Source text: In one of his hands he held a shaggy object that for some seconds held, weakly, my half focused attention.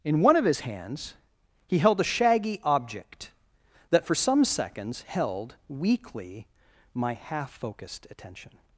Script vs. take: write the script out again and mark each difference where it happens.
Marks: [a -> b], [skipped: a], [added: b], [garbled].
In one of his hands he held a shaggy object that for some seconds held, weakly, my half focused attention.